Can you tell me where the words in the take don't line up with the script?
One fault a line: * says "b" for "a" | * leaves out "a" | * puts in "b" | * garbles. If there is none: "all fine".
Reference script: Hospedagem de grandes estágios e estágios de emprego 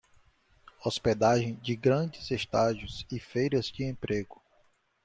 * says "feiras" for "estágios"